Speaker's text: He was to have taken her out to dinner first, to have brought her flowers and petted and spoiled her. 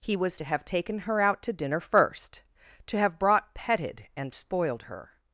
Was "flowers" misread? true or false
true